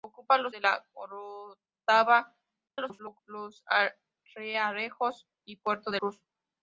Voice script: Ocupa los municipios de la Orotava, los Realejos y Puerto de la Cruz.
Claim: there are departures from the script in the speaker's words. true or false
true